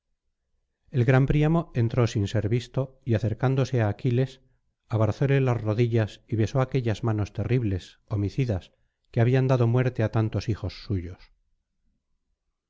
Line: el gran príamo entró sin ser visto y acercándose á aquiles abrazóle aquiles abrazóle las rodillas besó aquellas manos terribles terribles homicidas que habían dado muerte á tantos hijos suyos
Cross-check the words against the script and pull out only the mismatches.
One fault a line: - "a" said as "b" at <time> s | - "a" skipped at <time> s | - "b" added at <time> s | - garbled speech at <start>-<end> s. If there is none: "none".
- "aquiles abrazóle" skipped at 5.4 s
- "y" added at 6.2 s
- "terribles" skipped at 8.0 s